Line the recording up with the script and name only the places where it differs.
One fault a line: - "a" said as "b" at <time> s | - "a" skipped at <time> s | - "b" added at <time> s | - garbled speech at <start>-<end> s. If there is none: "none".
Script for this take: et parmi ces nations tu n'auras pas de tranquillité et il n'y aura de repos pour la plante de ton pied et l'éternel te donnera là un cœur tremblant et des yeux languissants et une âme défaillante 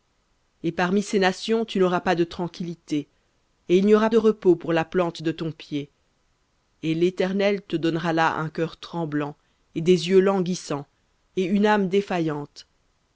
none